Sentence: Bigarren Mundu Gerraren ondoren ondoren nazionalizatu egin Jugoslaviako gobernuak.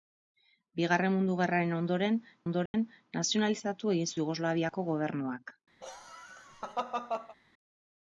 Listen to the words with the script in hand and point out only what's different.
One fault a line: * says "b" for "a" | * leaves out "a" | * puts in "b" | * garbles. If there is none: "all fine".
all fine